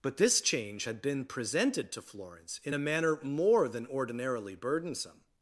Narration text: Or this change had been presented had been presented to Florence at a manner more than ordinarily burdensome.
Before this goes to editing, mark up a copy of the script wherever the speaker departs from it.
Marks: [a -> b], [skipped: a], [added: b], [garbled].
[Or -> But] this change had been presented [skipped: had been presented] to Florence [at -> in] a manner more than ordinarily burdensome.